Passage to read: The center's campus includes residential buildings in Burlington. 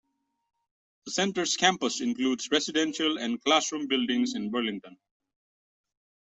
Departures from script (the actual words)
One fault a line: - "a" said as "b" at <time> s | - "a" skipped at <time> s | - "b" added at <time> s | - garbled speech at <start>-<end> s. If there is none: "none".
- "and classroom" added at 3.2 s